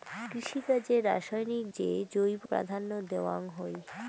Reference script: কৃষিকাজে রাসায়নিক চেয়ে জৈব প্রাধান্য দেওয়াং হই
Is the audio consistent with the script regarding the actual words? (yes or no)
yes